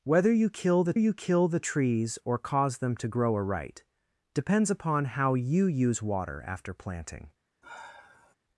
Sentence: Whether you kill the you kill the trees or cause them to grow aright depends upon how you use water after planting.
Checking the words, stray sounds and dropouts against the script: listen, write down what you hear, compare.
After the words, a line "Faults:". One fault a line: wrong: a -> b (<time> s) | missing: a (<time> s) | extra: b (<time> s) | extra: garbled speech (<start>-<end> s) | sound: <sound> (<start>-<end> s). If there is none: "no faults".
Whether you kill the you kill the trees or cause them to grow aright depends upon how you use water after planting.
Faults:
sound: sigh (7.6-8.3 s)